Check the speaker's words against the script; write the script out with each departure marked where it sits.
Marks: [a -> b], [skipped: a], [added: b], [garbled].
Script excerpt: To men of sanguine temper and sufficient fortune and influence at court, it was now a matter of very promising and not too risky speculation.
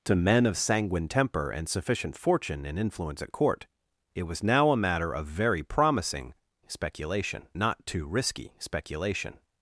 To men of sanguine temper and sufficient fortune and influence at court, it was now a matter of very promising [and -> speculation] not too risky speculation.